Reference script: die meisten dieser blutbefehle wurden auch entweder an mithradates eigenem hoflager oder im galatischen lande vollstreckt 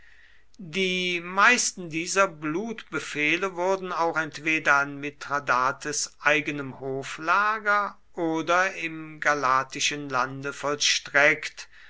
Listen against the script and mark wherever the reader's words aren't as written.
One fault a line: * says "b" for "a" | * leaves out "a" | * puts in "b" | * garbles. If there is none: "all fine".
all fine